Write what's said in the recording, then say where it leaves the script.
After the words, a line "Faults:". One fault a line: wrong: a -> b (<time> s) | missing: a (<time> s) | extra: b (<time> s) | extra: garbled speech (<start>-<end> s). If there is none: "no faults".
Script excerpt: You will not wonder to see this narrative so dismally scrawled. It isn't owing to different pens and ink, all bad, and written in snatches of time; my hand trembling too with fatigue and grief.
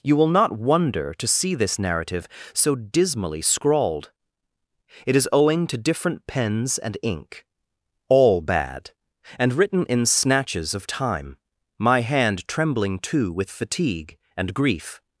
You will not wonder to see this narrative so dismally scrawled. It is owing to different pens and ink, all bad, and written in snatches of time; my hand trembling too with fatigue and grief.
Faults:
wrong: isn't -> is (5.2 s)